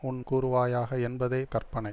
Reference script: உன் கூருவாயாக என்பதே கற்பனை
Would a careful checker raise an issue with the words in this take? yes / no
no